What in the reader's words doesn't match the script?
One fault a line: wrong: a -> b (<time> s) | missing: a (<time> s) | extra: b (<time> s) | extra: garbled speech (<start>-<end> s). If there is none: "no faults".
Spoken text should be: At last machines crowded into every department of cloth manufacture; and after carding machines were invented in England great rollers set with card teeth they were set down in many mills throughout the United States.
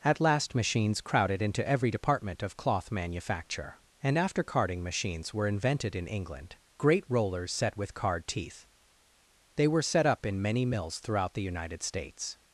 wrong: down -> up (10.1 s)